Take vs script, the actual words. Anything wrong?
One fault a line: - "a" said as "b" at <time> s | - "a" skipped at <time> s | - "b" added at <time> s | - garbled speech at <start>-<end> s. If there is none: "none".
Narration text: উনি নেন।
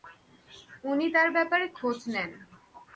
- "তার ব্যাপারে খোঁজ" added at 1.1 s